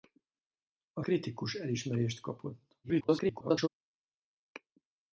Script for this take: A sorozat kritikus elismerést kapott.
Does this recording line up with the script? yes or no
no